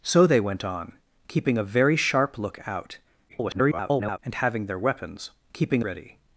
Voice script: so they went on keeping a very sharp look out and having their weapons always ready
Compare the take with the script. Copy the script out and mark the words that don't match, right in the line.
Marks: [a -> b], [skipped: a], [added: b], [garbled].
so they went on keeping a very sharp look out [garbled] and having their weapons [always -> keeping] ready